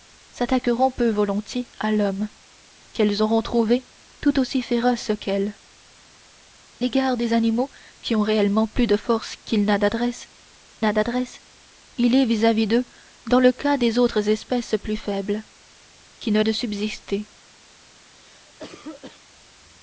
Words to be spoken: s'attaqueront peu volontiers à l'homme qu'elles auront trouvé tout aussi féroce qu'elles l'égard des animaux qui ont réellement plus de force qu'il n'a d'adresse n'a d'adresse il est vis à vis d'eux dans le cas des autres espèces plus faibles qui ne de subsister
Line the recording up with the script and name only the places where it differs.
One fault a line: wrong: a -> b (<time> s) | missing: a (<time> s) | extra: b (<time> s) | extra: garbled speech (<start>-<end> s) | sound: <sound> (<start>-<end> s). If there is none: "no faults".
sound: cough (18.1-19.3 s)